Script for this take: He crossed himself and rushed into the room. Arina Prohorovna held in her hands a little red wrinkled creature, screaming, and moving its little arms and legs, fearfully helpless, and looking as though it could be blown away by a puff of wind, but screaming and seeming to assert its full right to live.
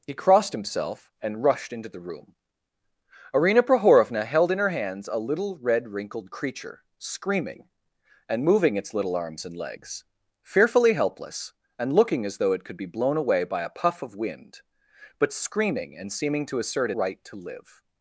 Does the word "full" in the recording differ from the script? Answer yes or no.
yes